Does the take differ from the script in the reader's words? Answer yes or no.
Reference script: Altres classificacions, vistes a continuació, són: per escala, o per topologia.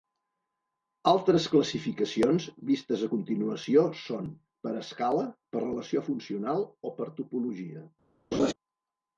yes